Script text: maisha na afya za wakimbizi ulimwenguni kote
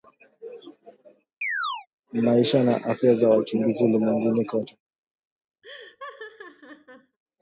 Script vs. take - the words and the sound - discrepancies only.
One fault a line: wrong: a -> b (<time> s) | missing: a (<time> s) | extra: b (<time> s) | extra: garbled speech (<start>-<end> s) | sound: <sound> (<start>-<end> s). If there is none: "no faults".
sound: chirp (1.4-1.9 s)
sound: laugh (5.6-7.2 s)